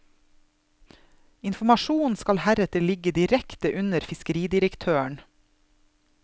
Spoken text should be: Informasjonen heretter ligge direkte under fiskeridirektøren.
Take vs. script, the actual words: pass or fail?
fail